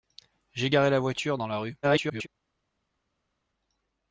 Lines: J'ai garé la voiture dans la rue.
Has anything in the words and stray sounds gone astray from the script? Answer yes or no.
yes